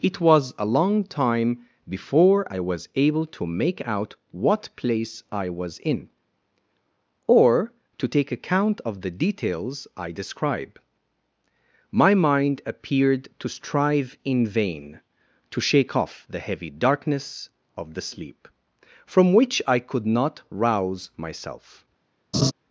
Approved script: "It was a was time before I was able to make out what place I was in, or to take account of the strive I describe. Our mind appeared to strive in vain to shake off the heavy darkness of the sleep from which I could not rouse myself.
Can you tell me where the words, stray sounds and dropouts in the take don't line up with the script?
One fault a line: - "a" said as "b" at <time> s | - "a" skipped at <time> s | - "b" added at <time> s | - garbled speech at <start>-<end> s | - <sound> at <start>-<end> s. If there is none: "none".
- "was" said as "long" at 0.6 s
- "strive" said as "details" at 9.1 s
- "Our" said as "My" at 11.9 s
- laugh at 22.3-22.5 s